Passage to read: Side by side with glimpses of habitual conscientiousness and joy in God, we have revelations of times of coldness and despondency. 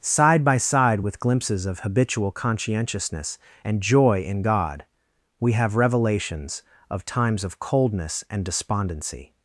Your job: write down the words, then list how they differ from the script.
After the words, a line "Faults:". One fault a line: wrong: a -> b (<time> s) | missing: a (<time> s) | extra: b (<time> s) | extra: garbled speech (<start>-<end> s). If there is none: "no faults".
Side by side with glimpses of habitual conscientiousness and joy in God, we have revelations of times of coldness and despondency.
Faults:
no faults